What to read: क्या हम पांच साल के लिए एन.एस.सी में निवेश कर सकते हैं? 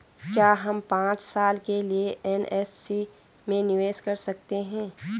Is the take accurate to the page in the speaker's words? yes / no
yes